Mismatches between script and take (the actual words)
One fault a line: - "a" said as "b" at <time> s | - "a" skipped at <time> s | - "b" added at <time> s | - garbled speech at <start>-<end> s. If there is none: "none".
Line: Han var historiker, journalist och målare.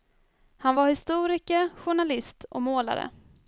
none